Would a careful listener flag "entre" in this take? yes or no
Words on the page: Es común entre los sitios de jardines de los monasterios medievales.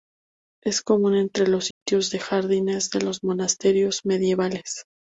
no